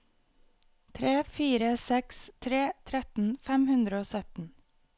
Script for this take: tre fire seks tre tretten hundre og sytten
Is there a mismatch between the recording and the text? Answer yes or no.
yes